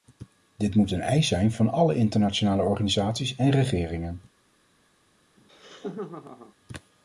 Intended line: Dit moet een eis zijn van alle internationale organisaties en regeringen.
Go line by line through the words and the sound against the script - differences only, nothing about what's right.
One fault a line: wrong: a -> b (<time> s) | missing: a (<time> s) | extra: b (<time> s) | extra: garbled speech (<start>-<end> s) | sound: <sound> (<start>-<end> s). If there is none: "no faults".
sound: laugh (5.4-6.5 s)